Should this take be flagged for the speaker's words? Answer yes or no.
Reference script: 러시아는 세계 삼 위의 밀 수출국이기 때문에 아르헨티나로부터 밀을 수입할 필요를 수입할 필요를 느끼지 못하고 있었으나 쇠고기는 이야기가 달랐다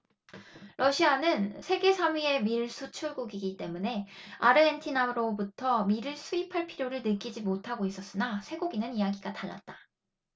yes